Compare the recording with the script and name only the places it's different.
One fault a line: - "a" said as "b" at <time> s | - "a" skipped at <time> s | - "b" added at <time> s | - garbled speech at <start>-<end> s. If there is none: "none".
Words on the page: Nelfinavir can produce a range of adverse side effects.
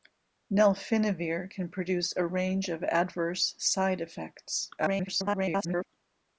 - garbled speech at 4.8-5.9 s